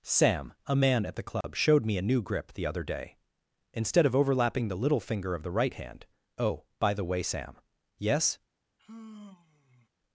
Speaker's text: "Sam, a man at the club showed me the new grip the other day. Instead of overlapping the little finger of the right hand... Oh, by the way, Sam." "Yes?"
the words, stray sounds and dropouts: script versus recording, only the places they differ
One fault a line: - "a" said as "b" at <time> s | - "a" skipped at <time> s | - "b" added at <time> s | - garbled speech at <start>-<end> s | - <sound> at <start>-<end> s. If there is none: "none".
- dropout at 1.4-1.4 s
- "the" said as "a" at 1.9 s
- sigh at 8.8-9.9 s